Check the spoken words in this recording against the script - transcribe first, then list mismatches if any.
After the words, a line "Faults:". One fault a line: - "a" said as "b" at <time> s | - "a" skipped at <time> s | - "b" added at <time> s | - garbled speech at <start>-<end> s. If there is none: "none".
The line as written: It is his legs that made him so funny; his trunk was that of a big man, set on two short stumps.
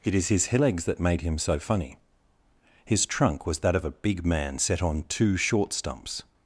It is his legs that made him so funny; his trunk was that of a big man, set on two short stumps.
Faults:
none